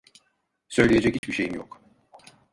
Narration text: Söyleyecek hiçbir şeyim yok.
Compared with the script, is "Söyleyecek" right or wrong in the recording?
right